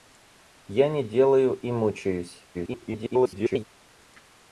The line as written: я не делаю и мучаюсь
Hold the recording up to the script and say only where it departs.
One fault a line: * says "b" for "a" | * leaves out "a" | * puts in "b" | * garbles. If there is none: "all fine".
* garbles